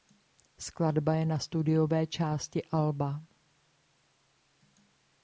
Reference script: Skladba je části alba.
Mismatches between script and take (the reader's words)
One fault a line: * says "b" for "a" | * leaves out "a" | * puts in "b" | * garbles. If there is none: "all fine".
* puts in "na studiové"